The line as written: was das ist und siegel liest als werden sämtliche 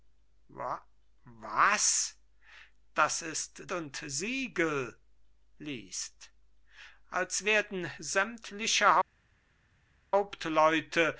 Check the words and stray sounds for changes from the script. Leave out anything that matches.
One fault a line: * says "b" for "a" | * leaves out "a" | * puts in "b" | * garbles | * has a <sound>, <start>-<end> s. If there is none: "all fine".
all fine